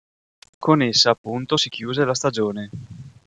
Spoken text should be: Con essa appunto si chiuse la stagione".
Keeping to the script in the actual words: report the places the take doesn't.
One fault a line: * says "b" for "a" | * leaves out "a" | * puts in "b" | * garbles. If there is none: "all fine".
all fine